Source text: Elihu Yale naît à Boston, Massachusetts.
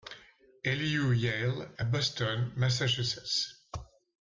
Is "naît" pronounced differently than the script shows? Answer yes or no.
yes